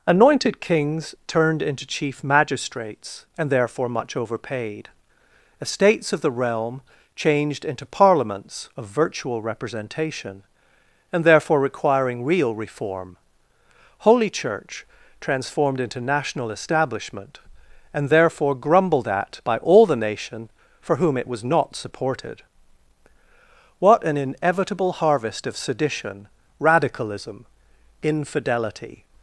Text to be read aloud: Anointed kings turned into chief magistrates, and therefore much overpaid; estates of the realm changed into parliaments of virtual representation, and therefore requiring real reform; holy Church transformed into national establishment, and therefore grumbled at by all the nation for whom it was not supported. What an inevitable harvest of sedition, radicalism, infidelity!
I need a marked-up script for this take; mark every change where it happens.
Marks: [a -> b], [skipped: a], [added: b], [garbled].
Anointed kings turned into chief magistrates, and therefore much overpaid; estates of the realm changed into parliaments of virtual representation, and therefore requiring real reform; holy Church transformed into national establishment, and therefore grumbled at by all the nation for whom it was not supported. What an inevitable harvest of sedition, radicalism, infidelity!